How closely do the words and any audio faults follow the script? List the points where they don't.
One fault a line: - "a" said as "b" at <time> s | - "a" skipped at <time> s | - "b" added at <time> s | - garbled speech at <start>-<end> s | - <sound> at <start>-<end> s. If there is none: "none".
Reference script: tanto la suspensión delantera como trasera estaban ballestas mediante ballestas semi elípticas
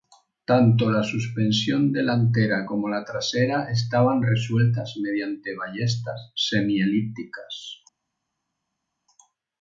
- "la" added at 2.9 s
- "ballestas" said as "resueltas" at 4.2 s